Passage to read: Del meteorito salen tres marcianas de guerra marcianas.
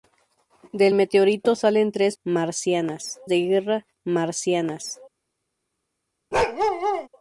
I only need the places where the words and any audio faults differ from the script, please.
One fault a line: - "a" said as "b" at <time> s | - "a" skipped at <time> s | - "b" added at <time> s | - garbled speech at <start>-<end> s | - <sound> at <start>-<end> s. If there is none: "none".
- bark at 6.3-7.1 s